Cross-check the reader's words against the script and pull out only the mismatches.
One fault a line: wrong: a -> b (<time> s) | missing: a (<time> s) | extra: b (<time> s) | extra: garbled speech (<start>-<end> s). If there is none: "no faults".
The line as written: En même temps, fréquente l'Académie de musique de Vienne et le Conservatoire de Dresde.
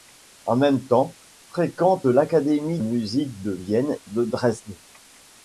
missing: de (2.8 s)
missing: et le Conservatoire (4.0 s)